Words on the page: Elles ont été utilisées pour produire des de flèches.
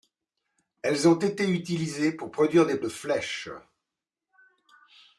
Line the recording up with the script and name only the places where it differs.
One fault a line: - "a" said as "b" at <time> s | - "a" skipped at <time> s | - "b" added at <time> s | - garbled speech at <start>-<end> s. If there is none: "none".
none